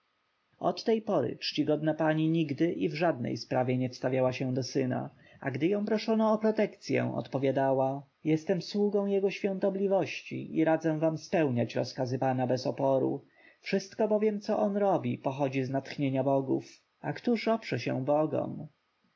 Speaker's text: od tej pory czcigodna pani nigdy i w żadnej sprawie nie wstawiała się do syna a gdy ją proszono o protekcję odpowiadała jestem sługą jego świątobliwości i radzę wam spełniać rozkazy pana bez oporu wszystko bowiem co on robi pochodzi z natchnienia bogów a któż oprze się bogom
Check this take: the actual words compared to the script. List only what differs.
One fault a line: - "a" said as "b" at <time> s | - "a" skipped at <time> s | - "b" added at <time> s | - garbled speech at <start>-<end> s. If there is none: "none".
none